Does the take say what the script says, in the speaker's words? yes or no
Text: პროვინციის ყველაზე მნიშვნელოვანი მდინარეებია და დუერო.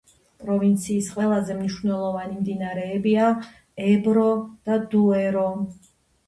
no